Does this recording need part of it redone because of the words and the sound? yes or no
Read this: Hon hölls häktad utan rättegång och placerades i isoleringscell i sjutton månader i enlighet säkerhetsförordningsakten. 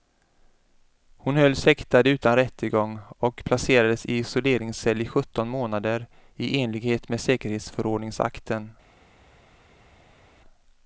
yes